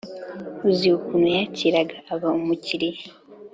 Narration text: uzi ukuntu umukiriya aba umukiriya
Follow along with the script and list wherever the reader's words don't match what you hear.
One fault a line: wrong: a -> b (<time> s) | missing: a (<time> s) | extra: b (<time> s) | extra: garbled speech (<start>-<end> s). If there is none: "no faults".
wrong: umukiriya -> yakiraga (1.4 s)